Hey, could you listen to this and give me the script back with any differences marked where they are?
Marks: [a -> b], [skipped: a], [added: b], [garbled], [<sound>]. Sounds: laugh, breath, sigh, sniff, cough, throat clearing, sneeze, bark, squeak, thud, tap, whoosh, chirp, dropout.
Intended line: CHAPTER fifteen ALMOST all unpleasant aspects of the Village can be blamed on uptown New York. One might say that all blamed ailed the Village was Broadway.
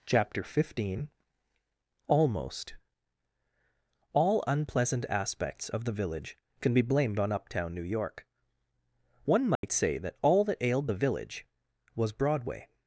CHAPTER fifteen ALMOST all unpleasant aspects of the Village can be blamed on uptown New York. One might [dropout] say that all [blamed -> that] ailed the Village was Broadway.